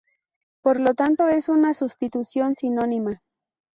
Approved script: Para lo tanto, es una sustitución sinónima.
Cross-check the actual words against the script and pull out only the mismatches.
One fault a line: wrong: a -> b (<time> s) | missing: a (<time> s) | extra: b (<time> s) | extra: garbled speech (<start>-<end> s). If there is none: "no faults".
wrong: Para -> Por (0.6 s)